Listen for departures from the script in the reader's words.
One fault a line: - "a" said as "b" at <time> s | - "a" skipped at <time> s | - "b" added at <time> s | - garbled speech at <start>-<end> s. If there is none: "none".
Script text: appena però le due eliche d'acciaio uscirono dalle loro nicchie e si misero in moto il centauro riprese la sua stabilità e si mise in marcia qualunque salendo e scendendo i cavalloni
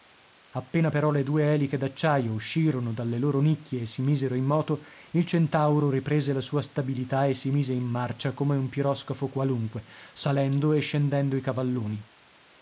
- "come un piroscafo" added at 8.3 s